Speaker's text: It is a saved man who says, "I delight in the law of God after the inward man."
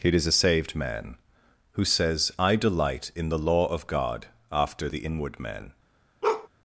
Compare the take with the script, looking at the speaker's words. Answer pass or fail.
pass